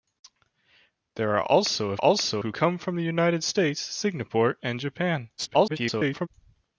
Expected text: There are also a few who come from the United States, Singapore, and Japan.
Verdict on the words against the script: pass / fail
fail